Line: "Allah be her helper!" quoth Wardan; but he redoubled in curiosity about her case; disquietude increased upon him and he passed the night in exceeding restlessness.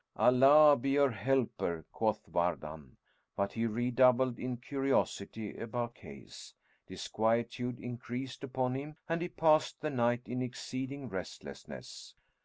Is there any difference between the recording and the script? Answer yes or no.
yes